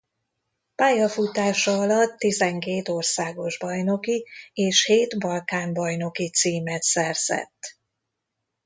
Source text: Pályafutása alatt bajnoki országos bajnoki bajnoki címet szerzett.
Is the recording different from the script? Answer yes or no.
yes